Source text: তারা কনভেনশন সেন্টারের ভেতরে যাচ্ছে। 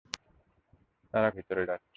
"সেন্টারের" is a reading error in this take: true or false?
true